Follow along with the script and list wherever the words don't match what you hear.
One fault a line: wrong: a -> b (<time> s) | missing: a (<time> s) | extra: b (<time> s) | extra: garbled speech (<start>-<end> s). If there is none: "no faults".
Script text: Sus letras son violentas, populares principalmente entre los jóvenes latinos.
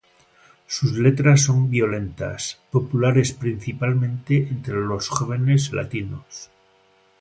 no faults